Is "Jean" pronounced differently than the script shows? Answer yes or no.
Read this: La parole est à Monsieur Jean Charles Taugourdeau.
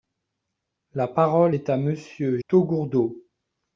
yes